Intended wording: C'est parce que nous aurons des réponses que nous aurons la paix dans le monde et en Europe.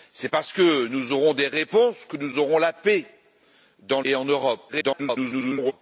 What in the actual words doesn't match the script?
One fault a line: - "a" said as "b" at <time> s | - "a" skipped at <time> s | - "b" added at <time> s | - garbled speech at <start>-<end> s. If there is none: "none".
- "le monde" skipped at 4.0 s
- garbled speech at 4.7-5.7 s